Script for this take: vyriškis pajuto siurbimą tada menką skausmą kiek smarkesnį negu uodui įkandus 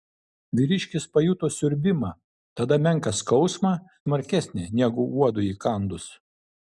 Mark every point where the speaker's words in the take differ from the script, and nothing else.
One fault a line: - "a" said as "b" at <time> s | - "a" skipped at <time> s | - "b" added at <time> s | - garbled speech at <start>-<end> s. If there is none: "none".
- "kiek" skipped at 3.8 s